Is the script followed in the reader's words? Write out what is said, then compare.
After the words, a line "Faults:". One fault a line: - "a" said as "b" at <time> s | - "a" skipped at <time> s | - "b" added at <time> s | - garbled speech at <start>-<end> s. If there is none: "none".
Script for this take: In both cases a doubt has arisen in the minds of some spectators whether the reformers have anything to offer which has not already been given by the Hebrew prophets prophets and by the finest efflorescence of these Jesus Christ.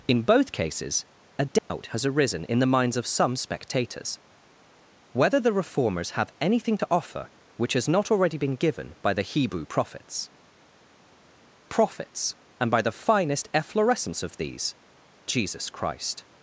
In both cases a doubt has arisen in the minds of some spectators whether the reformers have anything to offer which has not already been given by the Hebrew prophets prophets and by the finest efflorescence of these Jesus Christ.
Faults:
none